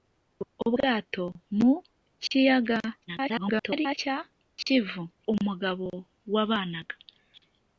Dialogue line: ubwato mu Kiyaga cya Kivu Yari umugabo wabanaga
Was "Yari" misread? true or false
true